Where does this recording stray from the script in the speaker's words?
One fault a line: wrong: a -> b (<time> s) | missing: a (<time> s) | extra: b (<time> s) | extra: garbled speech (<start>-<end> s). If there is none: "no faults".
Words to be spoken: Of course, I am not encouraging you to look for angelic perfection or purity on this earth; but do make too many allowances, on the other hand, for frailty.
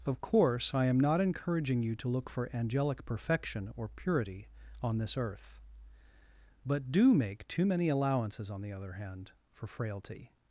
no faults